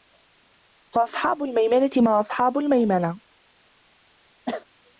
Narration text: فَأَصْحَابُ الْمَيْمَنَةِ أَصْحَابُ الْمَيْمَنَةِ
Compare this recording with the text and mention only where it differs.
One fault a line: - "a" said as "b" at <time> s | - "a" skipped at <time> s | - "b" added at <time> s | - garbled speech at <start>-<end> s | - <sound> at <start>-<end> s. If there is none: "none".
- "مَا" added at 2.0 s
- cough at 4.5-4.7 s